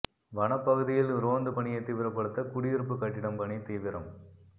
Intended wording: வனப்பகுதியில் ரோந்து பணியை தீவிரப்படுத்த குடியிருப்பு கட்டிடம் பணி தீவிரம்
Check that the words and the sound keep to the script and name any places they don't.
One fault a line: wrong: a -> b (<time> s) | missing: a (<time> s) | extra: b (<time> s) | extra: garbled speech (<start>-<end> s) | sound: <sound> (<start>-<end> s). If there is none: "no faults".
no faults